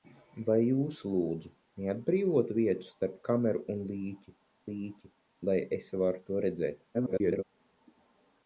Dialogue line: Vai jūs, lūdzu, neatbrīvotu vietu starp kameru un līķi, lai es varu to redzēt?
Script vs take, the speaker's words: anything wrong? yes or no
yes